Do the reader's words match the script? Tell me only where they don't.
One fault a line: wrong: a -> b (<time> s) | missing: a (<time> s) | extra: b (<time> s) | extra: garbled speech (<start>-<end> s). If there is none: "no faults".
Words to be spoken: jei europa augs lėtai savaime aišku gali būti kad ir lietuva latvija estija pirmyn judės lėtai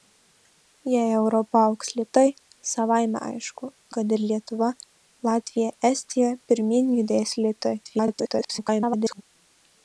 missing: gali būti (3.7 s)
extra: garbled speech (7.8-9.2 s)